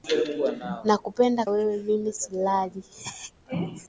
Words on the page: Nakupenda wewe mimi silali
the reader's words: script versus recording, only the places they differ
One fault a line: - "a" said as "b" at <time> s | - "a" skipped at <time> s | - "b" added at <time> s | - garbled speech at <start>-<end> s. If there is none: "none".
none